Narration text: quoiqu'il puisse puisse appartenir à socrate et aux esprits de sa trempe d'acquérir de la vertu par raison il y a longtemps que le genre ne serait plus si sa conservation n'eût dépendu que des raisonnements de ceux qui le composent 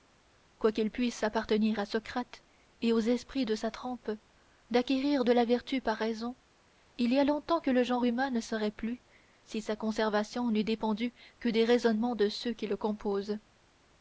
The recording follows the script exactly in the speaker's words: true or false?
false